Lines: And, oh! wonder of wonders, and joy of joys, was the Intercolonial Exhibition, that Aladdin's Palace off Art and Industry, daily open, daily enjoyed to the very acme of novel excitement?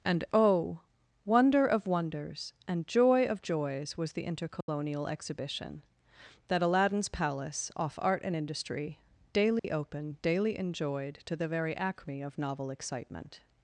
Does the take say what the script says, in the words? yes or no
yes